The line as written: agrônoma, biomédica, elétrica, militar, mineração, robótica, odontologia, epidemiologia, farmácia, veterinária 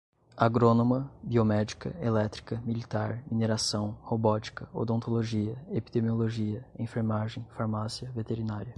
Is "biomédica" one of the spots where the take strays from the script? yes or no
no